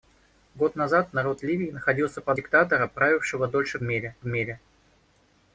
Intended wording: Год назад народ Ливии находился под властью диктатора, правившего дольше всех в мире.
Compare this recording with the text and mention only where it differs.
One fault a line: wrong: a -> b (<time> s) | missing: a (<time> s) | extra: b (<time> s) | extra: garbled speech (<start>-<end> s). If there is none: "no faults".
missing: властью (2.4 s)
wrong: всех -> мире (3.8 s)